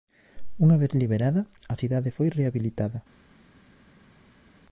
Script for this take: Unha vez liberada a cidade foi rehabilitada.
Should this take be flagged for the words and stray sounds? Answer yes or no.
no